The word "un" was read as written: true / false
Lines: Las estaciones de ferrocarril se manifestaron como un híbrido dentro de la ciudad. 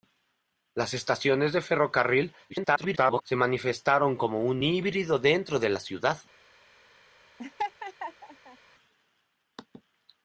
true